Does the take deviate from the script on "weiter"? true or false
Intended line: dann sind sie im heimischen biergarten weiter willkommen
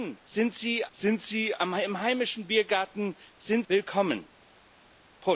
true